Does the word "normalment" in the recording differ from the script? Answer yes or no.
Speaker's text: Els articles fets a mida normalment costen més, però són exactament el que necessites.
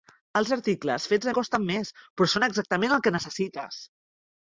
yes